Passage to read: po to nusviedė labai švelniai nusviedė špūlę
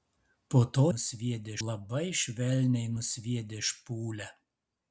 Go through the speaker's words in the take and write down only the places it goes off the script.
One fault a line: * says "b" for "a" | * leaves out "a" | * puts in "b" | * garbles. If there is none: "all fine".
all fine